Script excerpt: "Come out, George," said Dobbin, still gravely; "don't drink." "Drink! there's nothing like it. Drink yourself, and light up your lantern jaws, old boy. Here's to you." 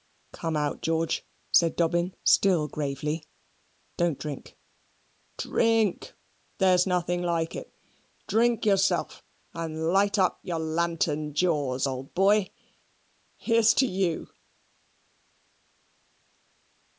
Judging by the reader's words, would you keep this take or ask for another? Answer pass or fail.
pass